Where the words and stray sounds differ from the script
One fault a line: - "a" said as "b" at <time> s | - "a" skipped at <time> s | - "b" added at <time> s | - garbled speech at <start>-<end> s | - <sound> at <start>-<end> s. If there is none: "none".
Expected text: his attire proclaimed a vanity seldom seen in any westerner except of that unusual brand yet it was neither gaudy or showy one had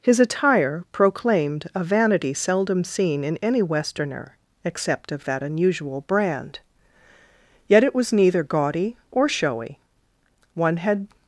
none